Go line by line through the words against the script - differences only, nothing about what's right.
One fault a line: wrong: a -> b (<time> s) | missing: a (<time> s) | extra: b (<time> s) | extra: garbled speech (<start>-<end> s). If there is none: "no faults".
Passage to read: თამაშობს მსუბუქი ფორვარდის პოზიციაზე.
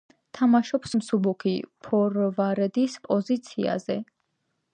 no faults